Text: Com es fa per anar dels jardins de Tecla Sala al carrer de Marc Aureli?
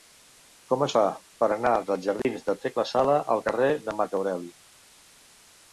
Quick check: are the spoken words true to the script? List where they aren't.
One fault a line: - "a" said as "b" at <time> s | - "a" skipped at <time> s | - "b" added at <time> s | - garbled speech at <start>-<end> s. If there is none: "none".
none